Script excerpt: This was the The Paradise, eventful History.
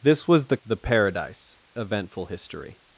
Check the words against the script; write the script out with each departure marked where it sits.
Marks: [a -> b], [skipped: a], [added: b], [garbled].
This was the The Paradise, eventful History.